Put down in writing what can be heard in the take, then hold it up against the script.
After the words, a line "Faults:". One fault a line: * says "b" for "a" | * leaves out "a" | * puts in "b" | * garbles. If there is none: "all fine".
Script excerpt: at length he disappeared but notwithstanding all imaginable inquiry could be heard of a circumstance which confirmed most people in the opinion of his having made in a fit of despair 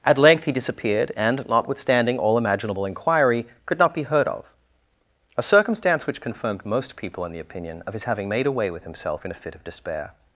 at length he disappeared and notwithstanding all imaginable inquiry could not be heard of a circumstance which confirmed most people in the opinion of his having made away with himself in a fit of despair
Faults:
* says "and" for "but"
* puts in "not"
* puts in "away with himself"